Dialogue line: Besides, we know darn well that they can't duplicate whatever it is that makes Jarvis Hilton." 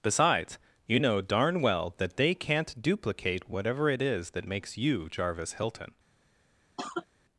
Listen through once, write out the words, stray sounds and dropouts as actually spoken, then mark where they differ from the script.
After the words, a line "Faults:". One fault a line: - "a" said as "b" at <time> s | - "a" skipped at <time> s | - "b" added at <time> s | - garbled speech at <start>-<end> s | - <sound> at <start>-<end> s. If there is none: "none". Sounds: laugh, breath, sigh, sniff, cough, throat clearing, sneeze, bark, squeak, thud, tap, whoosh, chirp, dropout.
Besides, you know darn well that they can't duplicate whatever it is that makes you Jarvis Hilton."
Faults:
- "we" said as "you" at 0.9 s
- "you" added at 4.8 s
- cough at 6.8-7.1 s